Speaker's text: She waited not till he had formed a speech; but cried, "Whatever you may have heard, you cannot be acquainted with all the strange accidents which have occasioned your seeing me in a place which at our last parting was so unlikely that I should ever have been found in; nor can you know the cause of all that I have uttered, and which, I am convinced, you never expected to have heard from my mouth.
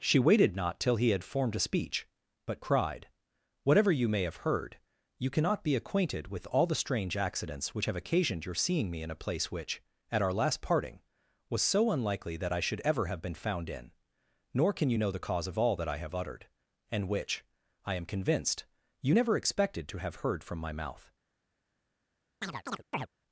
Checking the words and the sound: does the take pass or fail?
fail